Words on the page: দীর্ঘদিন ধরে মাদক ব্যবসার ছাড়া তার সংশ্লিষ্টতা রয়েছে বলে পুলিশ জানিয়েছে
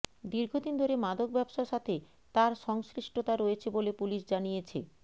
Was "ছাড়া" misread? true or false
true